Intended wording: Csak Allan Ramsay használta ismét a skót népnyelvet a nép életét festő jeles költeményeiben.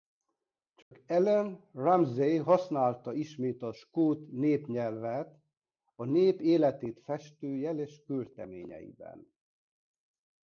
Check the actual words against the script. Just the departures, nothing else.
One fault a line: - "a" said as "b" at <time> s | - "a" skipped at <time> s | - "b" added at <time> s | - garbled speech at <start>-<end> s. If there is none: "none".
none